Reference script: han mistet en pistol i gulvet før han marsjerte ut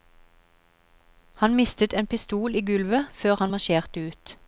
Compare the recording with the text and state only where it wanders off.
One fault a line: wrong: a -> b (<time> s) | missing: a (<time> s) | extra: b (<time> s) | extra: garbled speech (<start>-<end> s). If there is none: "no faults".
no faults